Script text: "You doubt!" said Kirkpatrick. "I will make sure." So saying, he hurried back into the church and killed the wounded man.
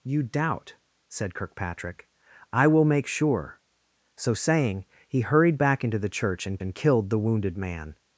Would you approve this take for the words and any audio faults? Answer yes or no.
no